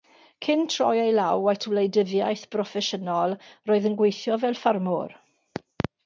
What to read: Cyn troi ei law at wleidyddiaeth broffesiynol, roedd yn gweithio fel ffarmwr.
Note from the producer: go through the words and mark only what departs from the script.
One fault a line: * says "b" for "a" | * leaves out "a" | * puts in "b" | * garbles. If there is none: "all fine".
all fine